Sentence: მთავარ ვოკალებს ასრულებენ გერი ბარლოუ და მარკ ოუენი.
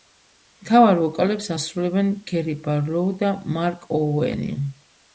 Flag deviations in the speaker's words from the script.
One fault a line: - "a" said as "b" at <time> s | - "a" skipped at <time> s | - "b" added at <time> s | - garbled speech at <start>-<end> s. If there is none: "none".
none